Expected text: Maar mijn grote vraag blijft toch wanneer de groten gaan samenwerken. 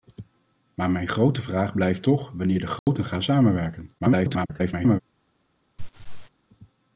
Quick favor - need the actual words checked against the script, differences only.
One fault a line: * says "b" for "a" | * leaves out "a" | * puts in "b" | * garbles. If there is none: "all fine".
* garbles